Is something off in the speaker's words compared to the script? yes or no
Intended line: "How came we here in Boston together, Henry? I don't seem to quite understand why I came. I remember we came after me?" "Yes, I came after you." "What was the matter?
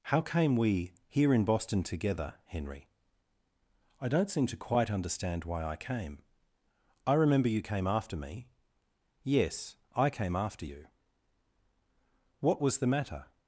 yes